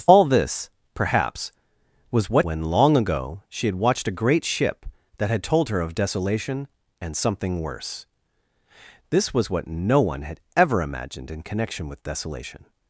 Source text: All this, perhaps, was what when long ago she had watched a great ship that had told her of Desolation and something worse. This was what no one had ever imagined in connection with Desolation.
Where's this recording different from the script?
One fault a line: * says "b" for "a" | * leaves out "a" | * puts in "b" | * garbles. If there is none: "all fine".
all fine